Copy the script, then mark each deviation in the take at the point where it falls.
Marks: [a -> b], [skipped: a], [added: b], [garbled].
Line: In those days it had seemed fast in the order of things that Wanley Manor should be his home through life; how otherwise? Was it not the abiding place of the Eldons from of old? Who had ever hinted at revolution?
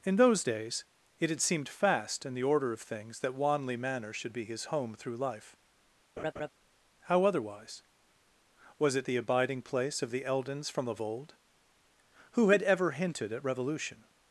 In those days it had seemed fast in the order of things that Wanley Manor should be his home through life; how otherwise? Was it [skipped: not] the abiding place of the Eldons from of old? Who had ever hinted at revolution?